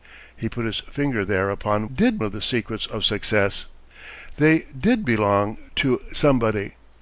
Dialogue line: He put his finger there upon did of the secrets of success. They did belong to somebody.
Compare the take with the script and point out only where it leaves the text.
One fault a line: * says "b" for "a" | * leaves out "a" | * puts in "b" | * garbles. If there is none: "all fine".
all fine